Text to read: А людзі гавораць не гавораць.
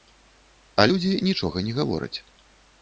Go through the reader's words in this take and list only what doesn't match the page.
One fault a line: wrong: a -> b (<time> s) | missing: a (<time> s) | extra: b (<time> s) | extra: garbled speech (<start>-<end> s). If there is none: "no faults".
wrong: гавораць -> нічога (1.3 s)